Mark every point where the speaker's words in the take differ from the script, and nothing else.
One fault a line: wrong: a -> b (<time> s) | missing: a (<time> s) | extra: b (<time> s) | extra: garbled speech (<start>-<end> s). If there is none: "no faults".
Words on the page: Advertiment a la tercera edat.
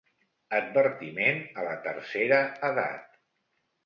no faults